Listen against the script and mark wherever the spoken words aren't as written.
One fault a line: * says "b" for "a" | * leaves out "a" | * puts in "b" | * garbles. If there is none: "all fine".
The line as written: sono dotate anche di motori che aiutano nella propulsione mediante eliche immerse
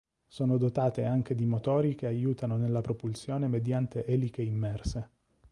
all fine